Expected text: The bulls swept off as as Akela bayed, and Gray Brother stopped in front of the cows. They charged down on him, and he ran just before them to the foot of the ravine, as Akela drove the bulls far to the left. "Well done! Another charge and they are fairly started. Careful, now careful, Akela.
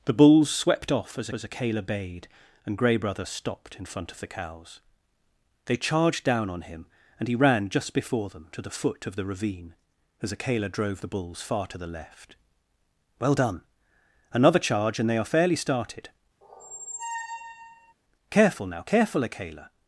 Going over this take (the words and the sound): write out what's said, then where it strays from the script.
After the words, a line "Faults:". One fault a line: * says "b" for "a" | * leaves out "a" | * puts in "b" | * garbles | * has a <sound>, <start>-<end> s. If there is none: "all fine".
The bulls swept off as as Akela bayed, and Gray Brother stopped in front of the cows. They charged down on him, and he ran just before them to the foot of the ravine, as Akela drove the bulls far to the left. "Well done! Another charge and they are fairly started. Careful, now careful, Akela.
Faults:
* has a squeak, 16.4-17.9 s